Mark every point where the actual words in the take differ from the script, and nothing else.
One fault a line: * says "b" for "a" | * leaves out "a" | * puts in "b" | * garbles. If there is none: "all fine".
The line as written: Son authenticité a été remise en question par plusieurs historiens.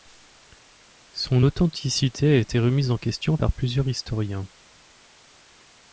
all fine